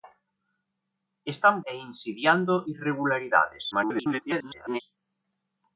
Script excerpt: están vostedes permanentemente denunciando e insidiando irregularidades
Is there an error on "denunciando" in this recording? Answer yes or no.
yes